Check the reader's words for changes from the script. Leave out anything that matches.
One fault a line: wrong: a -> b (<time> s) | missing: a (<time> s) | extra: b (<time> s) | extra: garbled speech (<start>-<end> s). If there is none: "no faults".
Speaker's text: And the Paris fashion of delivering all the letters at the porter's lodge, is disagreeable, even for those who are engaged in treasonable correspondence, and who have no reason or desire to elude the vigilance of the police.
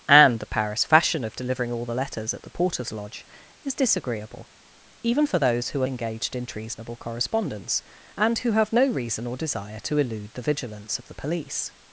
no faults